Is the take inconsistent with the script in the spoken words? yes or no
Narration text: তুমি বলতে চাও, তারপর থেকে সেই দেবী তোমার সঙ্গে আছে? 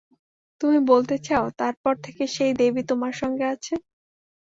no